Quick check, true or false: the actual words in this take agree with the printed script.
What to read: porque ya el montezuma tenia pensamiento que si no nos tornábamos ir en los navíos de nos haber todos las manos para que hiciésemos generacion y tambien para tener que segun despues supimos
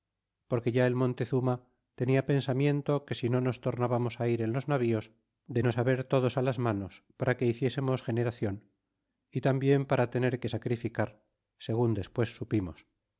false